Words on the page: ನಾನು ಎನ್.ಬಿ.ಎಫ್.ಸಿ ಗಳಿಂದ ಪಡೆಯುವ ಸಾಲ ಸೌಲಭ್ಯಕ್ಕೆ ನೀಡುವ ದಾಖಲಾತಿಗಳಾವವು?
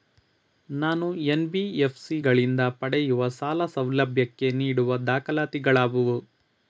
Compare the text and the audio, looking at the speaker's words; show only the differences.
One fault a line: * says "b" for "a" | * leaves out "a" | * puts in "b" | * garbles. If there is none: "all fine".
all fine